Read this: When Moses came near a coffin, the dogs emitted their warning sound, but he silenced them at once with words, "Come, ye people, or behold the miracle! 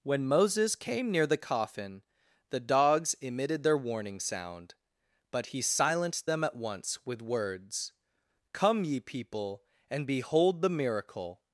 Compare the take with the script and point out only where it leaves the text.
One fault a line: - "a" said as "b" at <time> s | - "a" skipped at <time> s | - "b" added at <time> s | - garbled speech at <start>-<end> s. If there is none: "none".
- "a" said as "the" at 1.3 s
- "or" said as "and" at 9.9 s